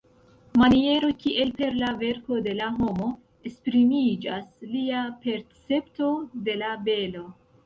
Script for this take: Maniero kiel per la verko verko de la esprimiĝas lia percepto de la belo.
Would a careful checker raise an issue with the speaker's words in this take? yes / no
yes